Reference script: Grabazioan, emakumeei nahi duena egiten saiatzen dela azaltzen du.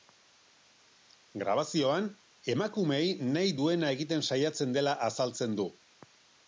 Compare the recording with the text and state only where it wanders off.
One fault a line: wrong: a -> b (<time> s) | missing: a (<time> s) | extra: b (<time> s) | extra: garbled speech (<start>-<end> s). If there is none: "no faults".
no faults